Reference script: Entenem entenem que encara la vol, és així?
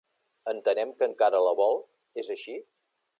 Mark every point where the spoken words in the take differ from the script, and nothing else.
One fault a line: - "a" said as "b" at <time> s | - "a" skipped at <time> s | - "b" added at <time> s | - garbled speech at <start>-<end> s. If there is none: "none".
- "entenem" skipped at 0.9 s